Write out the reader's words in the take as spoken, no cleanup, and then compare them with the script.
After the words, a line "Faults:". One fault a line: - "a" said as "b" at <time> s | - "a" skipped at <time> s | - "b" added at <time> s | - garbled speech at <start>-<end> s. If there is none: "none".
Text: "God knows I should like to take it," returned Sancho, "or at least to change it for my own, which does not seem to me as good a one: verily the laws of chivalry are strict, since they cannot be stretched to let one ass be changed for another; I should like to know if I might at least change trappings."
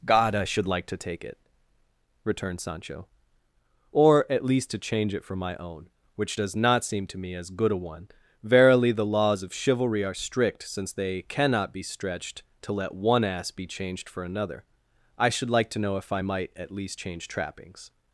"God I should like to take it," returned Sancho, "or at least to change it for my own, which does not seem to me as good a one: verily the laws of chivalry are strict, since they cannot be stretched to let one ass be changed for another; I should like to know if I might at least change trappings."
Faults:
- "knows" skipped at 0.3 s